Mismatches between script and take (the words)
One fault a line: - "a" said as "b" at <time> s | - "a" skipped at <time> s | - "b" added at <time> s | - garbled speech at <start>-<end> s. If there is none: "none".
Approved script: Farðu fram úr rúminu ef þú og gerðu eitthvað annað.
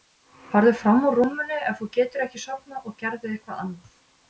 - "getur ekki sofnað" added at 2.0 s